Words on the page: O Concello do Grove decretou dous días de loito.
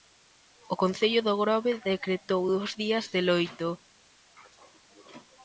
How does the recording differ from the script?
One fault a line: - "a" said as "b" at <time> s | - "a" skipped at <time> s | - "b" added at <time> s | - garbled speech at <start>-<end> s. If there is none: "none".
none